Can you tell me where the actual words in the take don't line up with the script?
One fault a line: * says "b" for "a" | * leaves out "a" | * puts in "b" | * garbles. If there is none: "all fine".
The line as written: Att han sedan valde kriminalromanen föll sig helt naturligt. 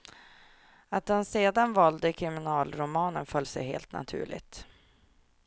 all fine